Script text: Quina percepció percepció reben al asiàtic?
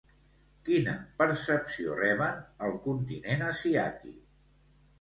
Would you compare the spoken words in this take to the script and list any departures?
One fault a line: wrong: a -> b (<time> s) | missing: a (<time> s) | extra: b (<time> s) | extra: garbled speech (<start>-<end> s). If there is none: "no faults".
missing: percepció (2.0 s)
extra: continent (2.9 s)